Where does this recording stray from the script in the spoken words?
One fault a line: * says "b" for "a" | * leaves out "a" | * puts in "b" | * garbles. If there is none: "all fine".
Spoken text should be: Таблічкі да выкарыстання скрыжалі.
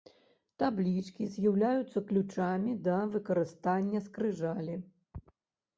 * puts in "з'яўляюцца ключамі"